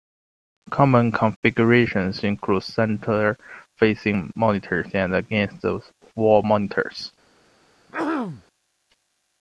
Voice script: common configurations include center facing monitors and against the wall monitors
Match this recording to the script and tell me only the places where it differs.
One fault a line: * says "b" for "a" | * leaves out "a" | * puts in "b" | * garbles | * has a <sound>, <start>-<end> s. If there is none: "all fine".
* has a throat clearing, 7.9-8.4 s